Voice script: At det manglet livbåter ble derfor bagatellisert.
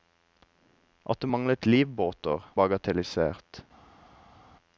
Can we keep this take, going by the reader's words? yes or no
no